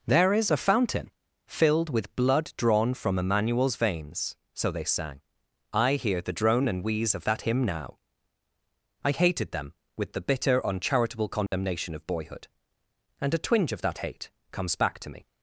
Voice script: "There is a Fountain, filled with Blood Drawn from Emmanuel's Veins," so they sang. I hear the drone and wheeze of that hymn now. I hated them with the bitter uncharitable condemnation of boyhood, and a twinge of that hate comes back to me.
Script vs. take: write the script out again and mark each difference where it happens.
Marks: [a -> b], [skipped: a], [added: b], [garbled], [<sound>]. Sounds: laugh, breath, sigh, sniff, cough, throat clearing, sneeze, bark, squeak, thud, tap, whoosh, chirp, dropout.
"There is a Fountain, filled with Blood Drawn from Emmanuel's Veins," so they sang. I hear the drone and wheeze of that hymn now. I hated them with the bitter uncharitable condemnation [dropout] of boyhood, and a twinge of that hate comes back to me.